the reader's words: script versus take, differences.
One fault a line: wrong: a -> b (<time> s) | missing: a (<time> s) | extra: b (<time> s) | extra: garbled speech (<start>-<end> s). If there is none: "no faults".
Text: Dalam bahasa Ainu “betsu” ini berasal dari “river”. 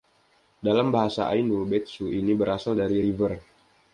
no faults